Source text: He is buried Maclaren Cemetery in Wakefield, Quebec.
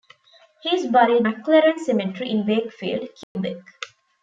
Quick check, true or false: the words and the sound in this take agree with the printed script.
false